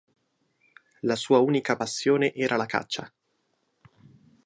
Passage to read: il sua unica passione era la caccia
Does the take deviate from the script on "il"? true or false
true